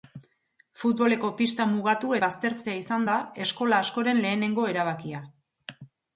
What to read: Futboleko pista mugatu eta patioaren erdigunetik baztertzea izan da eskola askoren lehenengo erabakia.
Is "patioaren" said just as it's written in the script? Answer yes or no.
no